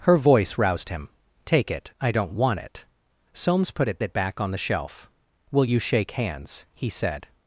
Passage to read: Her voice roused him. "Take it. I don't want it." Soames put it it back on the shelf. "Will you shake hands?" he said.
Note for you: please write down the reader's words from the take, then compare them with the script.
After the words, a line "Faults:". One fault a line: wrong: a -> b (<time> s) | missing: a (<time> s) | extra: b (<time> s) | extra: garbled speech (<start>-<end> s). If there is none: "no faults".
Her voice roused him. "Take it. I don't want it." Soames put it it back on the shelf. "Will you shake hands?" he said.
Faults:
no faults